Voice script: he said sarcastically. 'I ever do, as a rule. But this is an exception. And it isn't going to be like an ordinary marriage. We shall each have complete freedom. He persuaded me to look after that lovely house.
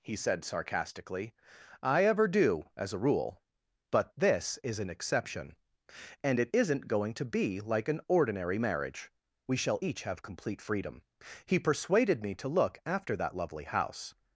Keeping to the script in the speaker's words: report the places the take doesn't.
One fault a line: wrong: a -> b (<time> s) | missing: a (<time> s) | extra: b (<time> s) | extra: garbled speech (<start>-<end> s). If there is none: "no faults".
no faults